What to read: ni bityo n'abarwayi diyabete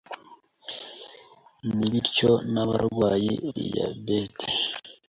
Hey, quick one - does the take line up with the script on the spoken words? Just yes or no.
yes